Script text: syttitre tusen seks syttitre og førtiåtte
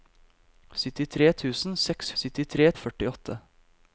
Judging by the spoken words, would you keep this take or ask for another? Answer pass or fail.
pass